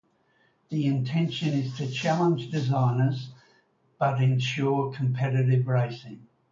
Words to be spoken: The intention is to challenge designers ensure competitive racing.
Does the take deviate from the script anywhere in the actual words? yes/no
yes